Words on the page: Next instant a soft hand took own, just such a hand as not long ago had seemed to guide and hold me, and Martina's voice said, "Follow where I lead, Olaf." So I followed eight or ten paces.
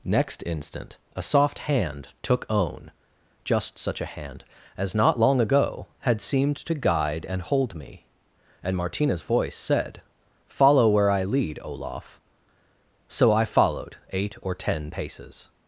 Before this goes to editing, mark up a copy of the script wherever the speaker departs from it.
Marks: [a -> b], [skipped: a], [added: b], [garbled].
Next instant a soft hand took own, just such a hand as not long ago had seemed to guide and hold me, and Martina's voice said, "Follow where I lead, Olaf." So I followed eight or ten paces.